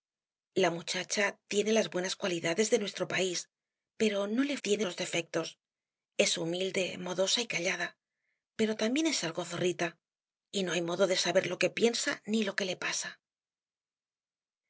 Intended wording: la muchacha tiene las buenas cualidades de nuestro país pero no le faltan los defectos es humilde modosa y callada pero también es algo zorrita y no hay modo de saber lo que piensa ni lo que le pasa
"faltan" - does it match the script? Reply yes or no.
no